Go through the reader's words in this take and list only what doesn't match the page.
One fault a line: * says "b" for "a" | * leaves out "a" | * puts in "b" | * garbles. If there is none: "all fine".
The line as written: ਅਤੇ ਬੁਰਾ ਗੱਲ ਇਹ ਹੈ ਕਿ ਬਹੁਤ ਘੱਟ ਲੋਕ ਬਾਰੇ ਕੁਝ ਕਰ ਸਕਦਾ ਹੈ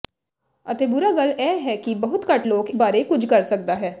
all fine